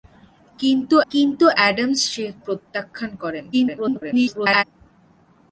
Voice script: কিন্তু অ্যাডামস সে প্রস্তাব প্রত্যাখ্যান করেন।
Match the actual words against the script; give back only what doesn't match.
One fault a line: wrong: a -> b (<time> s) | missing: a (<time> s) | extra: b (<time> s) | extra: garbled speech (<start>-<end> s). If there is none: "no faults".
extra: কিন্তু (1.1 s)
missing: প্রস্তাব (2.2 s)
extra: garbled speech (3.5-4.6 s)